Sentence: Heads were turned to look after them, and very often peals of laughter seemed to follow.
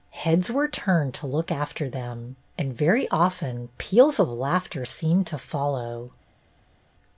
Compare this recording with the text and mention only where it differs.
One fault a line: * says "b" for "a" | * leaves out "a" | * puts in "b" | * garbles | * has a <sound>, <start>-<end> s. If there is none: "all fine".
all fine